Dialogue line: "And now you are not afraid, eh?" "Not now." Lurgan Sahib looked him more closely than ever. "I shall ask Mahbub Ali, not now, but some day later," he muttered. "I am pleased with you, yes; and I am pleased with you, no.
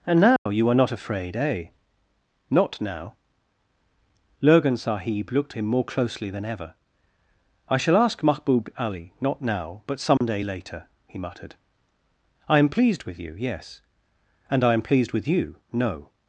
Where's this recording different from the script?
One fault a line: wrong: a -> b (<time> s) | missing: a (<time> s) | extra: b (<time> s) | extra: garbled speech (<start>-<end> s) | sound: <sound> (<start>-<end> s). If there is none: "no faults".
sound: dropout (0.4-0.5 s)
sound: dropout (10.2-10.2 s)